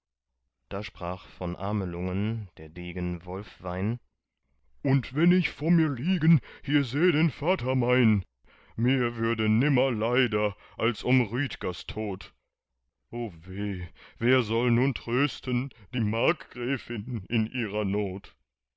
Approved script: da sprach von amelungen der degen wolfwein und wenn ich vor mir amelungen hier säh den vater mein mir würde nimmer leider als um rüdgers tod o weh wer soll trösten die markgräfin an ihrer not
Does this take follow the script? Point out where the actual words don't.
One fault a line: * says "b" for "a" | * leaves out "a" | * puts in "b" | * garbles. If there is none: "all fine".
* says "liegen" for "amelungen"
* puts in "nun"
* says "in" for "an"